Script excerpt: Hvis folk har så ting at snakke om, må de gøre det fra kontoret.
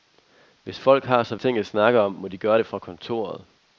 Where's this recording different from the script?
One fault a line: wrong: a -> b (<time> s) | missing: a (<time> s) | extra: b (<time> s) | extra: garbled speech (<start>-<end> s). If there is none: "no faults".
no faults